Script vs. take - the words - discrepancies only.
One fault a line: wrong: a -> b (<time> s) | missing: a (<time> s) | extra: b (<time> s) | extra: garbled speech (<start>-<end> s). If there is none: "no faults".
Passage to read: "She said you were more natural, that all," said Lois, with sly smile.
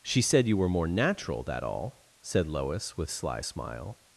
no faults